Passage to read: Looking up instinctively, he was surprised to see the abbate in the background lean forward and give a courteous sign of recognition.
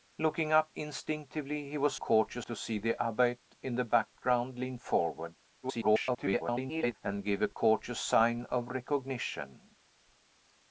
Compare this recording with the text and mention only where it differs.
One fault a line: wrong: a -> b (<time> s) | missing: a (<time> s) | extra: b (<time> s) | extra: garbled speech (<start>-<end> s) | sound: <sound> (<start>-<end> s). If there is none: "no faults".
wrong: surprised -> courteous (1.9 s)
extra: garbled speech (5.6-6.9 s)
sound: dropout (7.5-7.6 s)